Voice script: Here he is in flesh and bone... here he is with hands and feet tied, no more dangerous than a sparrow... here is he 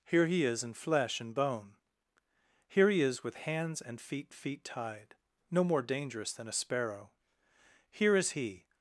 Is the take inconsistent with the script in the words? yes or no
yes